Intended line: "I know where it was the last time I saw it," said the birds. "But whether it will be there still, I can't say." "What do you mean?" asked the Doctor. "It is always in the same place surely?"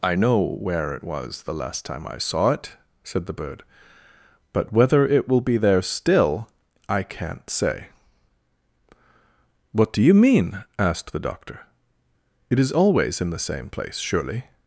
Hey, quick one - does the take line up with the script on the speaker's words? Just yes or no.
no